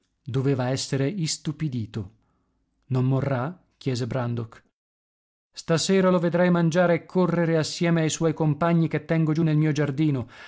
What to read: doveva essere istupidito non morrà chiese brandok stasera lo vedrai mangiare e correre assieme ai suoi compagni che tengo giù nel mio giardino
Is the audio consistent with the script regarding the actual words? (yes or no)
yes